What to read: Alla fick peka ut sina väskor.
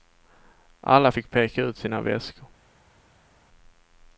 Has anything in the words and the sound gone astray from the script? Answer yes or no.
no